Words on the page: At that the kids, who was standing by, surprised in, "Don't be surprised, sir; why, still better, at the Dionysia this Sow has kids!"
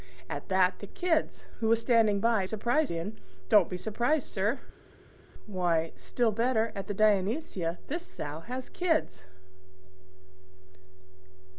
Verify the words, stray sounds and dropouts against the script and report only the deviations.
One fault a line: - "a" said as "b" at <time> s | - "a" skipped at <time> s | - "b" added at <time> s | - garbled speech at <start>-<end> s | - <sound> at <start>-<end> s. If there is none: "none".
none